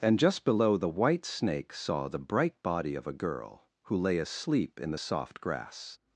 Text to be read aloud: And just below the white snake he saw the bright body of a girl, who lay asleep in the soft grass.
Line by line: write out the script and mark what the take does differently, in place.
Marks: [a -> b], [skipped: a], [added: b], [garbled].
And just below the white snake [skipped: he] saw the bright body of a girl, who lay asleep in the soft grass.